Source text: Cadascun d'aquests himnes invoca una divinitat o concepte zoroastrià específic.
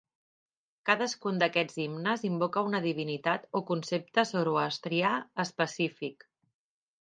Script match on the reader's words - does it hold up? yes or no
yes